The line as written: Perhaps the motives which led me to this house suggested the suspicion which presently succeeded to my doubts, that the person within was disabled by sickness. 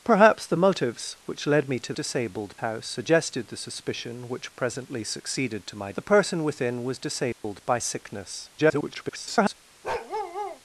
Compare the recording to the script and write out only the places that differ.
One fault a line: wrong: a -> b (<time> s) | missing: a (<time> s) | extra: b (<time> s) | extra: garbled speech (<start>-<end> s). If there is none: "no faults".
wrong: this -> disabled (1.9 s)
missing: doubts that (5.9 s)
extra: garbled speech (8.6-9.5 s)